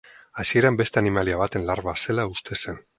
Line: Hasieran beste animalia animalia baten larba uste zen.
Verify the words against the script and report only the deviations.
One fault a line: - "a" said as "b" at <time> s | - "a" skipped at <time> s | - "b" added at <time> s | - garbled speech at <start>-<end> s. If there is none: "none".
- "animalia" skipped at 1.4 s
- "zela" added at 2.0 s